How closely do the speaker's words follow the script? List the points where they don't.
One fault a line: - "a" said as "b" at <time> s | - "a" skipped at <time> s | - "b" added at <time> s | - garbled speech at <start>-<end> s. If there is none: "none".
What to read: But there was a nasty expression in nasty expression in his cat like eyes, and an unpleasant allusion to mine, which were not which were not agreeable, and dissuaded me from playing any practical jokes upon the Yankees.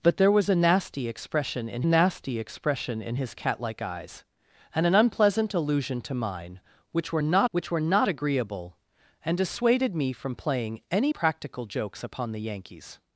none